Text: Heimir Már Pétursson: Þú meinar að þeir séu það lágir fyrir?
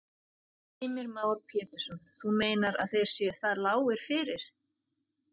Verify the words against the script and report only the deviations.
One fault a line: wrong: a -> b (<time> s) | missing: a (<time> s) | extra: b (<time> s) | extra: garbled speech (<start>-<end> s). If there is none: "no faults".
no faults